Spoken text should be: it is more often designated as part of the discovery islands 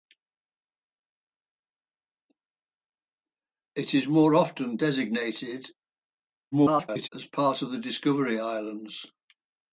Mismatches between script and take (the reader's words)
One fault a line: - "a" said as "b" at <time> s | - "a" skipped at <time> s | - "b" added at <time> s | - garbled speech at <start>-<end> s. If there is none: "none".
- garbled speech at 6.5-7.1 s